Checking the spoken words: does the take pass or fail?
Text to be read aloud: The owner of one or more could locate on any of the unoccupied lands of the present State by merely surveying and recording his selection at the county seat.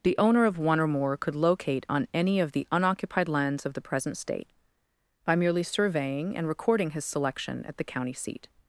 pass